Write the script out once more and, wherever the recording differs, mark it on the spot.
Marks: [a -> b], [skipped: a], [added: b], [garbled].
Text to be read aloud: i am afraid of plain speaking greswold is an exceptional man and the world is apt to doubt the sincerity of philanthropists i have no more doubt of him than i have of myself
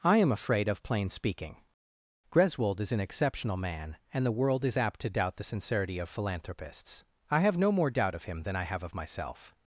i am afraid of plain speaking greswold is an exceptional man and the world is apt to doubt the sincerity of philanthropists i have no more doubt of him than i have of myself